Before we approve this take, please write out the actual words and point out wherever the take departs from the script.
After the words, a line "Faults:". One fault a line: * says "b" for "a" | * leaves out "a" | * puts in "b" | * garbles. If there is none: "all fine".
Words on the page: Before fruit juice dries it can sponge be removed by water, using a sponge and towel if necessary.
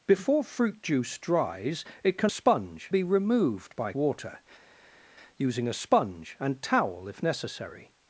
Before fruit juice dries it can sponge be removed by water, using a sponge and towel if necessary.
Faults:
all fine